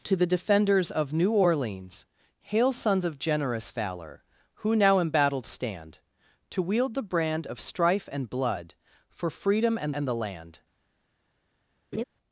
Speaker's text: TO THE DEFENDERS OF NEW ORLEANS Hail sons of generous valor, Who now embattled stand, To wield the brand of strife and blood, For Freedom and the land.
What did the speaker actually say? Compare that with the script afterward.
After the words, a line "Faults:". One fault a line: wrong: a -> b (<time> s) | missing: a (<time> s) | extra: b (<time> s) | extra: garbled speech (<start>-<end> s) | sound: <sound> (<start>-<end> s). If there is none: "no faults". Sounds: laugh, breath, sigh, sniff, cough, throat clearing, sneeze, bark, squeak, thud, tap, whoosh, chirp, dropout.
TO THE DEFENDERS OF NEW ORLEANS Hail sons of generous valor, Who now embattled stand, To wield the brand of strife and blood, For Freedom and and the land.
Faults:
extra: and (9.9 s)
sound: laugh (11.9-12.0 s)